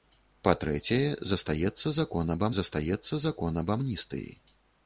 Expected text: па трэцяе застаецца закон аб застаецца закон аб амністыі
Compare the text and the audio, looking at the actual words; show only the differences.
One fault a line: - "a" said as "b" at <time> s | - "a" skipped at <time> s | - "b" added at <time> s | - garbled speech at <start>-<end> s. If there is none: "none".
none